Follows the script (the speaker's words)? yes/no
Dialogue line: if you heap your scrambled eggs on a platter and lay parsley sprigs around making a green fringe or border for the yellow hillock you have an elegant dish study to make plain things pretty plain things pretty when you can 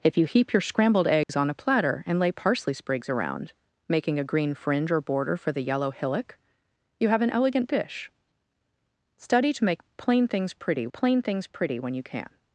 yes